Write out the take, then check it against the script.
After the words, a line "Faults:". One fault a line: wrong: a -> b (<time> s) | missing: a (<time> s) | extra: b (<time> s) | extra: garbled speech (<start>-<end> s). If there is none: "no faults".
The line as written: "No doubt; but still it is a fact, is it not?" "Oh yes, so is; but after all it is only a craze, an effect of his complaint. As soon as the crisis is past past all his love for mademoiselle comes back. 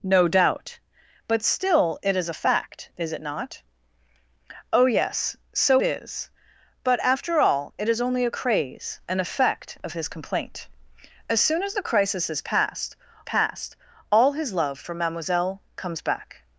"No doubt; but still it is a fact, is it not?" "Oh yes, so is; but after all it is only a craze, an effect of his complaint. As soon as the crisis is past past all his love for mademoiselle comes back.
Faults:
no faults